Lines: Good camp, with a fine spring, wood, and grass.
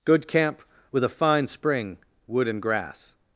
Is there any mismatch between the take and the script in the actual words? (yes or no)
no